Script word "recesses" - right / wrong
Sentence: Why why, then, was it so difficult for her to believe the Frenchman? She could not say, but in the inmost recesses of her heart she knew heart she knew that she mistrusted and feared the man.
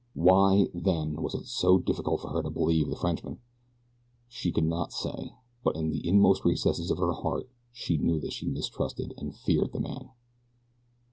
right